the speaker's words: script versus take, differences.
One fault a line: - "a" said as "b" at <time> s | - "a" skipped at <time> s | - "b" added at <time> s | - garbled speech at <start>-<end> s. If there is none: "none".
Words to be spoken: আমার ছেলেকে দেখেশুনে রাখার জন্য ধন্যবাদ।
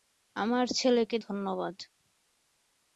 - "দেখেশুনে রাখার জন্য" skipped at 1.2 s